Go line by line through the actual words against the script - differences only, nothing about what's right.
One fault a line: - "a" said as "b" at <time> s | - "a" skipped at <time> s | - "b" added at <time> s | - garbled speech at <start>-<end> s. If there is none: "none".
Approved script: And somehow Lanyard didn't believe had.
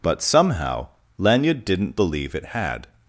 - "And" said as "But" at 0.0 s
- "it" added at 2.3 s